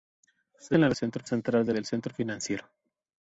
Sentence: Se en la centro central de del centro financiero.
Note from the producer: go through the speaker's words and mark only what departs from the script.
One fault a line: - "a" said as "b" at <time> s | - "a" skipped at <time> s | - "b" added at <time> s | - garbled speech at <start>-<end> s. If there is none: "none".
none